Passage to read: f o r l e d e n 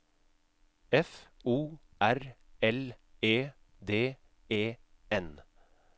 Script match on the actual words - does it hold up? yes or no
yes